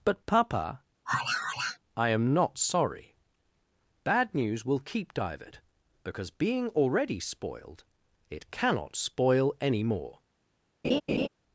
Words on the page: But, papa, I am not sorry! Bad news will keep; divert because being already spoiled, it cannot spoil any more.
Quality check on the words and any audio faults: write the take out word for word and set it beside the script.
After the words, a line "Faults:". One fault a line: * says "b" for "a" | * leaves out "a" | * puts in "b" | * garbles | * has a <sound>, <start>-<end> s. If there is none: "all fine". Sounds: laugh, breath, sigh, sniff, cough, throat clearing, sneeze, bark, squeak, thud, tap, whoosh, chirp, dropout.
But, papa, I am not sorry! Bad news will keep; divert because being already spoiled, it cannot spoil any more.
Faults:
* has a sigh, 1.1-1.8 s
* has a laugh, 10.8-11.3 s